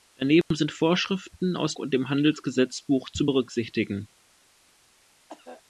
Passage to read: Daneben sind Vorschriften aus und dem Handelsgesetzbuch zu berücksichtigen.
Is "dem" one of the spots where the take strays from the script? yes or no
no